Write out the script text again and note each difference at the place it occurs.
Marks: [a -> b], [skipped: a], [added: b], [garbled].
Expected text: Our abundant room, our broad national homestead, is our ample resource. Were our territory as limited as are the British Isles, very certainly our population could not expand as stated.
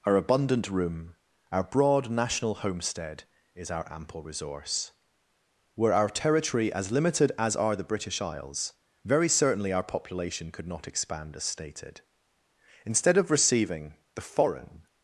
Our abundant room, our broad national homestead, is our ample resource. Were our territory as limited as are the British Isles, very certainly our population could not expand as stated. [added: Instead of receiving the foreign]